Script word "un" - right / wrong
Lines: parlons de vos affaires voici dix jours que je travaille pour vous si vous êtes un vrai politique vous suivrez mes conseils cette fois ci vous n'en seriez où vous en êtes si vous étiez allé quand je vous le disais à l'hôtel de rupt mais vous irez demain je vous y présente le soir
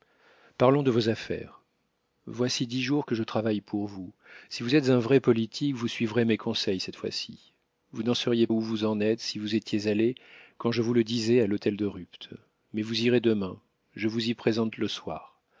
right